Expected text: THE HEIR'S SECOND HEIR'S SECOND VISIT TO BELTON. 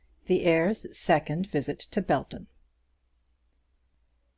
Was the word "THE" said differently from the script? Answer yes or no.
no